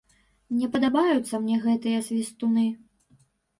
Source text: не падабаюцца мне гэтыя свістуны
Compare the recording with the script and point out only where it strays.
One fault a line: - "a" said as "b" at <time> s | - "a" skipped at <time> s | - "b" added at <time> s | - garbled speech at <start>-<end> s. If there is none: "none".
none